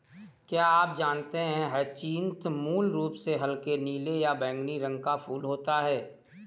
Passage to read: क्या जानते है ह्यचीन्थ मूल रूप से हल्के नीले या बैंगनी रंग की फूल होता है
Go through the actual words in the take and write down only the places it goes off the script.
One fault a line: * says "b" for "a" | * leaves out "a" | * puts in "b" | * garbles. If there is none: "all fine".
* puts in "आप"
* says "का" for "की"